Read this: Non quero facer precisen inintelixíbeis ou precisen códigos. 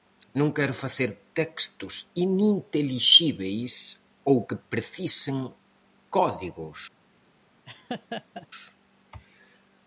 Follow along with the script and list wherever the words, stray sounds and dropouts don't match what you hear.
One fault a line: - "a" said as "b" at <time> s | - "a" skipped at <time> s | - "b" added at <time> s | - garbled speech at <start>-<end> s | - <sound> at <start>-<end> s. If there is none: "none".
- "precisen" said as "textos" at 1.4 s
- "que" added at 4.5 s
- laugh at 7.7-8.5 s